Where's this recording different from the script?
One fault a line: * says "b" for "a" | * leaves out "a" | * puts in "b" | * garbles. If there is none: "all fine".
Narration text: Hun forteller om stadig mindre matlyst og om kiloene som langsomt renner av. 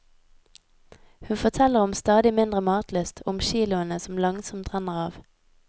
all fine